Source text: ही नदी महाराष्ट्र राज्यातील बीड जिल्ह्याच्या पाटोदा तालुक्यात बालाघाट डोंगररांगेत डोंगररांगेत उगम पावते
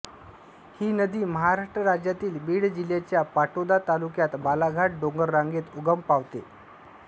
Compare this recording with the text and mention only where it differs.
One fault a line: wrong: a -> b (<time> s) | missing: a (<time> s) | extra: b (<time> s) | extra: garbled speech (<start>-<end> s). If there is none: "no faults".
missing: डोंगररांगेत (5.8 s)